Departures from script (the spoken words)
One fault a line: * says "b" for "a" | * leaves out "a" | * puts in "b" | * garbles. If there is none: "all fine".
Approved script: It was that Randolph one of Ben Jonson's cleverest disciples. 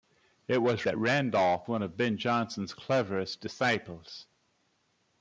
all fine